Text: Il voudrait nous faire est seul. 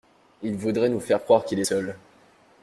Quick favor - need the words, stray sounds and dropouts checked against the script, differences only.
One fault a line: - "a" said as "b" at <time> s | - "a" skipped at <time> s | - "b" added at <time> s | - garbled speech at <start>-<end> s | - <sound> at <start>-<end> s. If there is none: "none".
- "croire qu'il" added at 1.2 s